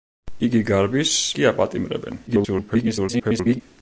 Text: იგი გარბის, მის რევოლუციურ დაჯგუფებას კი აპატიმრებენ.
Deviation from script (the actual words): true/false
true